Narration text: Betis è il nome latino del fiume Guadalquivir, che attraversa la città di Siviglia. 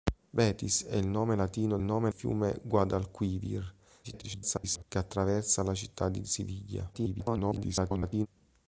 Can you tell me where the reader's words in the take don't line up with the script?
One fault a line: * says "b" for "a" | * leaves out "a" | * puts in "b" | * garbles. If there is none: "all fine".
* says "nome" for "del"
* garbles
* garbles